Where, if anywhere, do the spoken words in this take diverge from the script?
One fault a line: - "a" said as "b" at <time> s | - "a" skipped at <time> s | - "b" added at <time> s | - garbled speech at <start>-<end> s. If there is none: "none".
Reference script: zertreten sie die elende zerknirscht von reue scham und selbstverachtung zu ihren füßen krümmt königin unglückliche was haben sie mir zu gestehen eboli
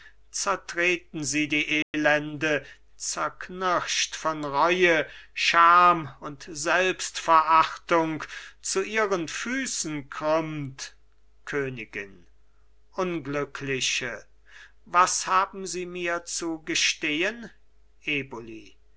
none